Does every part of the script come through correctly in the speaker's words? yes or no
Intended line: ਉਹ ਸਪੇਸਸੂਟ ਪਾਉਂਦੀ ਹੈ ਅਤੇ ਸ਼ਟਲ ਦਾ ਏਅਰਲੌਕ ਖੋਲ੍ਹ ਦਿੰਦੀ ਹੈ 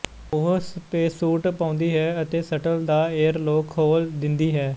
yes